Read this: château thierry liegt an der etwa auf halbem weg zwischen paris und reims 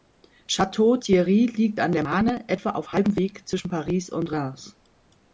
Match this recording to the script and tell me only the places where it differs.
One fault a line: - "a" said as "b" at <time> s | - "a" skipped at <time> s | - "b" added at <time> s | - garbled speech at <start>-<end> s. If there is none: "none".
- "marne" added at 2.0 s